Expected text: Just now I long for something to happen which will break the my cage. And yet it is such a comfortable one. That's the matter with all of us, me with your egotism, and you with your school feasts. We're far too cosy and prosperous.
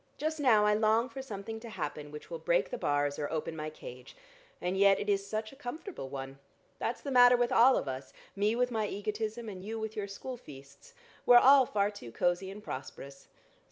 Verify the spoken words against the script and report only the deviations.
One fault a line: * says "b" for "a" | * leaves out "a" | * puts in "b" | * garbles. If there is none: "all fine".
* puts in "bars or open"
* says "my" for "your"
* puts in "all"